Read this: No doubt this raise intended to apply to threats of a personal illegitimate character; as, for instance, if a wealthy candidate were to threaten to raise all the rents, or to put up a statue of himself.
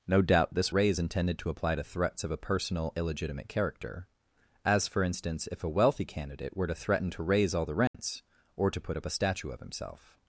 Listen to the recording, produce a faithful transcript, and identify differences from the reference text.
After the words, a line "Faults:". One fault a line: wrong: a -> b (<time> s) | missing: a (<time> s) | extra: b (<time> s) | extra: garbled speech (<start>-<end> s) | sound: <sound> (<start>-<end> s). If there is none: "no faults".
No doubt this raise intended to apply to threats of a personal illegitimate character; as, for instance, if a wealthy candidate were to threaten to raise all the rents, or to put up a statue of himself.
Faults:
sound: dropout (7.9-7.9 s)